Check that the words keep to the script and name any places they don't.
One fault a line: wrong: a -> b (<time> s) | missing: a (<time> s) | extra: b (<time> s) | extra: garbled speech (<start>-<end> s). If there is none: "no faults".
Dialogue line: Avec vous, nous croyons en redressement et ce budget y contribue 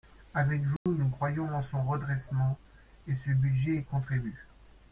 extra: son (1.6 s)